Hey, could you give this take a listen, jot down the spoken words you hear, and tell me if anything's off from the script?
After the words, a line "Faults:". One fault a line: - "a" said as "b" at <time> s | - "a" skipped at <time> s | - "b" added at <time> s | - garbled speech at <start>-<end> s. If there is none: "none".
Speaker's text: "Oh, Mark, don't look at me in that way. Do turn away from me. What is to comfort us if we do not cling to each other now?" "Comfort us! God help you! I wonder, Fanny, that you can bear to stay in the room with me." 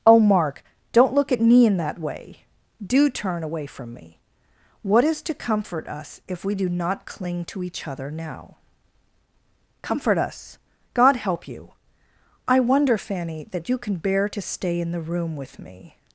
"Oh, Mark, don't look at me in that way. Do turn away from me. What is to comfort us if we do not cling to each other now?" "Comfort us! God help you! I wonder, Fanny, that you can bear to stay in the room with me."
Faults:
none